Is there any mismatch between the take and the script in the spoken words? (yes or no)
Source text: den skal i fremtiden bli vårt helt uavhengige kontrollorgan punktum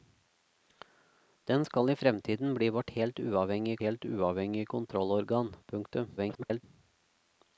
yes